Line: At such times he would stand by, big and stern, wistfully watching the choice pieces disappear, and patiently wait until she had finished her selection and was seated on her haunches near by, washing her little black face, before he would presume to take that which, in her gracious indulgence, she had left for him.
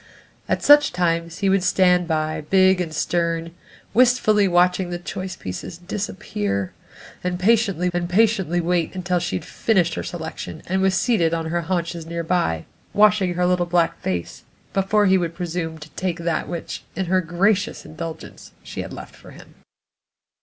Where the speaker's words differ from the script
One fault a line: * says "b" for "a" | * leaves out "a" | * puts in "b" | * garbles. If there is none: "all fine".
* puts in "and patiently"